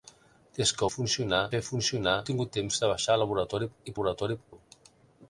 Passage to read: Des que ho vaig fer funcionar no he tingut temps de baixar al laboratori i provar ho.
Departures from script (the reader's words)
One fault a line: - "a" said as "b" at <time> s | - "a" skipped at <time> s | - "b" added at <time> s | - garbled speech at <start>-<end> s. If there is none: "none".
- "vaig" said as "funcionar" at 0.9 s
- "no" skipped at 2.2 s
- "provar" said as "laboratori" at 3.9 s